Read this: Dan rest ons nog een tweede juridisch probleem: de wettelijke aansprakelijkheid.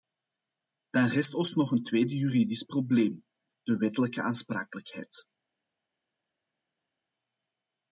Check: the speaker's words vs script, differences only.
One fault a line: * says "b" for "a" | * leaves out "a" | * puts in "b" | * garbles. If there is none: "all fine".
all fine